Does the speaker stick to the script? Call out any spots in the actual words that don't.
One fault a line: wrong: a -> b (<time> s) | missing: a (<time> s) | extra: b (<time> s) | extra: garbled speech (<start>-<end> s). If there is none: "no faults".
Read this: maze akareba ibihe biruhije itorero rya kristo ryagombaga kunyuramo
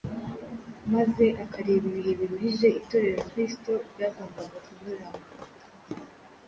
missing: rya (3.2 s)